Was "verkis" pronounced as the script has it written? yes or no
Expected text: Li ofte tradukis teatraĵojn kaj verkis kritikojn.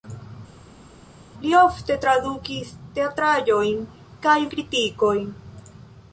no